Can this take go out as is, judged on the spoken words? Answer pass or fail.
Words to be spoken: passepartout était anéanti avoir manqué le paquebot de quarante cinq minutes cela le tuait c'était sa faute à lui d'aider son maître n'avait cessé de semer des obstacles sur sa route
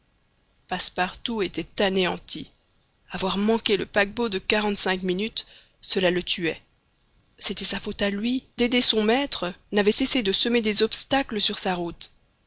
pass